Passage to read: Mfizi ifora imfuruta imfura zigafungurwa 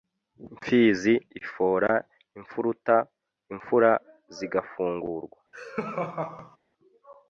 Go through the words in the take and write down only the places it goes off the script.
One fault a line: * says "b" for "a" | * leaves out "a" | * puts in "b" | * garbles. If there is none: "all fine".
all fine